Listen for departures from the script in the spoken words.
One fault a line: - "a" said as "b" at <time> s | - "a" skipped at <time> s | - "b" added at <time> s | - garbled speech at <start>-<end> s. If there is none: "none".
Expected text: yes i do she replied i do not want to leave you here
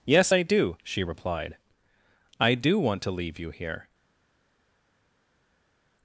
- "not" skipped at 2.8 s